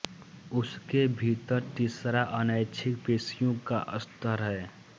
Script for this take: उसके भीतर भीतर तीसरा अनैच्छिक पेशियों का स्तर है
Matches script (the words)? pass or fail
fail